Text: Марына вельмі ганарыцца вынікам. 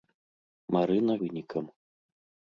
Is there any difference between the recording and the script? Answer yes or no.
yes